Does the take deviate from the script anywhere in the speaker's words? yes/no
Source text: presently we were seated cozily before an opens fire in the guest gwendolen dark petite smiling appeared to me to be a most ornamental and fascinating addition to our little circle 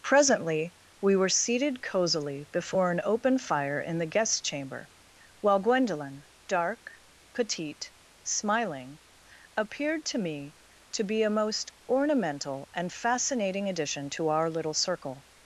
yes